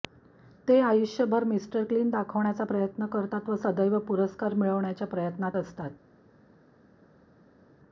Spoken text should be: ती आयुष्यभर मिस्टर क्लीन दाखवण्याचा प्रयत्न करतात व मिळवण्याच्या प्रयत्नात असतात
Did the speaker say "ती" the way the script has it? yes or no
no